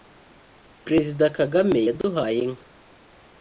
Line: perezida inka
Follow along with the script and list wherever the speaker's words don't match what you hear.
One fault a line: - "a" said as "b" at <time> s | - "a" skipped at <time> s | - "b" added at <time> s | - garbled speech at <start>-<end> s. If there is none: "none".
- "kagame yaduhaye" added at 1.4 s